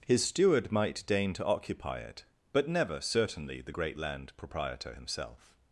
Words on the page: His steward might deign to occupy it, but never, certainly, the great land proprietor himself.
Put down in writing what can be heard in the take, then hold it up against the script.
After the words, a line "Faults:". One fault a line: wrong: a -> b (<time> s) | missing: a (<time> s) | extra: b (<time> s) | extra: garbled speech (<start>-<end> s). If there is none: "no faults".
His steward might deign to occupy it, but never, certainly, the great land proprietor himself.
Faults:
no faults